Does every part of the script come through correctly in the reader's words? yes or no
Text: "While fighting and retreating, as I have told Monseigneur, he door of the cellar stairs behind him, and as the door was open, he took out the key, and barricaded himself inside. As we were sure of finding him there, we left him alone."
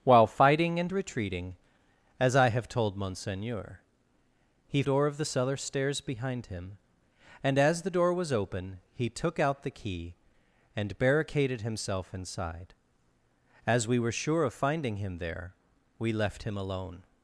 yes